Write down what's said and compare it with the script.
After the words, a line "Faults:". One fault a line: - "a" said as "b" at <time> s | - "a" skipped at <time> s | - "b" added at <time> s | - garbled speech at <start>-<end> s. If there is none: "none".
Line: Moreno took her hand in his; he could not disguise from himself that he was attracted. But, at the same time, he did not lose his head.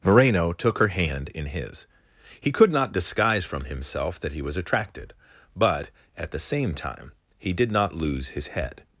Moreno took her hand in his; he could not disguise from himself that he was attracted. But, at the same time, he did not lose his head.
Faults:
none